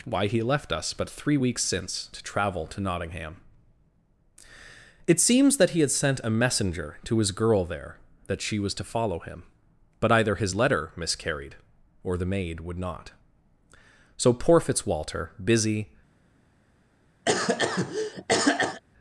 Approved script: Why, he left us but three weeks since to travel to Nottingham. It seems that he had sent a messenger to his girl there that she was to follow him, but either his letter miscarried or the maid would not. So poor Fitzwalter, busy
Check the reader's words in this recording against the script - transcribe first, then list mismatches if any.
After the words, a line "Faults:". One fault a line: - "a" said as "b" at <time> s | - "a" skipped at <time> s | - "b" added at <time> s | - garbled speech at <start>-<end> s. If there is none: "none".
Why, he left us but three weeks since to travel to Nottingham. It seems that he had sent a messenger to his girl there that she was to follow him, but either his letter miscarried or the maid would not. So poor Fitzwalter, busy
Faults:
none